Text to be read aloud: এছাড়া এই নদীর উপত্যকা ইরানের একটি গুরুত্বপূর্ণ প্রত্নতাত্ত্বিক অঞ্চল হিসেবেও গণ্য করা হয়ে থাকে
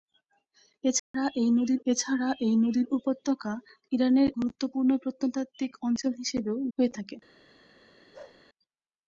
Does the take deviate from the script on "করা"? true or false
true